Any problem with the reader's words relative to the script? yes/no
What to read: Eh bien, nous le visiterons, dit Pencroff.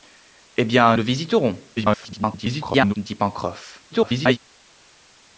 yes